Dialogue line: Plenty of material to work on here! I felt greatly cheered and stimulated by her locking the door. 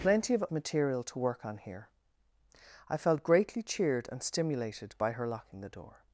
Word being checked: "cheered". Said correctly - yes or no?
yes